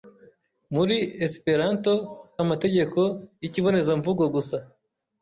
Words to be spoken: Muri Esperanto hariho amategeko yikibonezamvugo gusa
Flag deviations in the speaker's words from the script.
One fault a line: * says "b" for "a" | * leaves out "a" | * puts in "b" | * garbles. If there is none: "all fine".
* leaves out "hariho"